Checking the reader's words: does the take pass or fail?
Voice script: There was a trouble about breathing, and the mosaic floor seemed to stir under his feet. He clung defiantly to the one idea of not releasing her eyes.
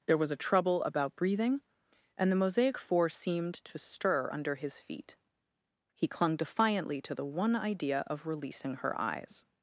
fail